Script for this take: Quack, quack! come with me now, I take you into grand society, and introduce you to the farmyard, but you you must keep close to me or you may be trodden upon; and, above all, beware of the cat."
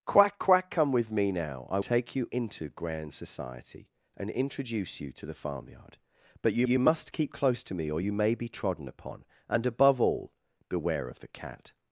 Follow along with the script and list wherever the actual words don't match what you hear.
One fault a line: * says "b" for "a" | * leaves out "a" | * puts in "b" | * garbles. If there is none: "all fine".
all fine